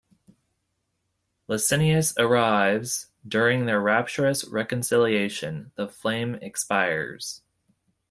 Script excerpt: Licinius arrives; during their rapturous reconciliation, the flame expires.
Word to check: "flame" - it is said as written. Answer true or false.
true